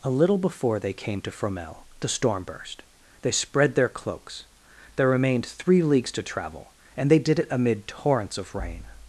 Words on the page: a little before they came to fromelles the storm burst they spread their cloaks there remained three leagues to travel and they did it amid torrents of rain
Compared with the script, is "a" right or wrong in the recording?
right